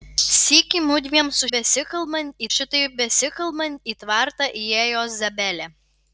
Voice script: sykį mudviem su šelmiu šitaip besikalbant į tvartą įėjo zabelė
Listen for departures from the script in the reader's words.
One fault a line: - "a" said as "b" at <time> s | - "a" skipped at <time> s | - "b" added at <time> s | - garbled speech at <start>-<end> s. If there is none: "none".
- "šelmiu" said as "besikalbant" at 1.5 s